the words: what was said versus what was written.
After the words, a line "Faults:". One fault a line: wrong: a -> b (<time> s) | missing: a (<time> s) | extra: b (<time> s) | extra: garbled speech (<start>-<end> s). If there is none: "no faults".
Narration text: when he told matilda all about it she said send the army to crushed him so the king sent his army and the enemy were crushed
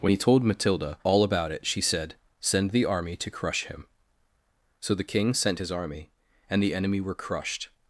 when he told matilda all about it she said send the army to crush him so the king sent his army and the enemy were crushed
Faults:
wrong: crushed -> crush (3.3 s)